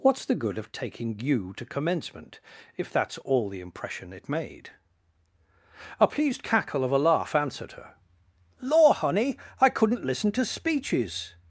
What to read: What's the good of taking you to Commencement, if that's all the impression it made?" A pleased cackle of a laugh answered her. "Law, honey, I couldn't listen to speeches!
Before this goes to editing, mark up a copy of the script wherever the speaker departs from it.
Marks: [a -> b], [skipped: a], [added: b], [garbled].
What's the good of taking you to Commencement, if that's all the impression it made?" A pleased cackle of a laugh answered her. "Law, honey, I couldn't listen to speeches!